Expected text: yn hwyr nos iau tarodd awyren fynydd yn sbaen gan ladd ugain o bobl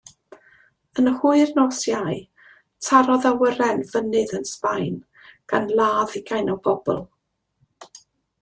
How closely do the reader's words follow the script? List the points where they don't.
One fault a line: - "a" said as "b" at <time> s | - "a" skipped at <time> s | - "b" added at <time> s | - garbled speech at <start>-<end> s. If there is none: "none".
none